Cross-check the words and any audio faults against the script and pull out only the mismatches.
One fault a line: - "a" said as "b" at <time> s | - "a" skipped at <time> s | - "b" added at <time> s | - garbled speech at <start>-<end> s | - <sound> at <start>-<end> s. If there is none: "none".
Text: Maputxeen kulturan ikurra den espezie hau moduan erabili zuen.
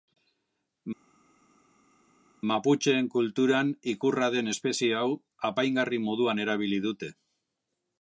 - "apaingarri" added at 5.5 s
- "zuen" said as "dute" at 6.9 s